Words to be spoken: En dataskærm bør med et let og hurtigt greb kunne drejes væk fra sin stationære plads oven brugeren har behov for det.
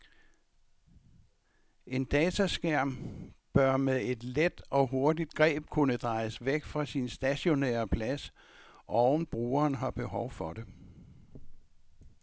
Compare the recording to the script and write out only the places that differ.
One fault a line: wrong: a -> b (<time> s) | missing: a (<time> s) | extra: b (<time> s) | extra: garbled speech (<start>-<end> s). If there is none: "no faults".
no faults